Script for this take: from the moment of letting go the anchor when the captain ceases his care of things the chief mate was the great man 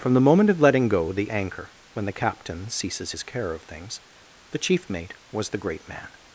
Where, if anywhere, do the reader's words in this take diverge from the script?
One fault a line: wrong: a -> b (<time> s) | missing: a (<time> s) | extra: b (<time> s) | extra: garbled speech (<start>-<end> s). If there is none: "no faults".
no faults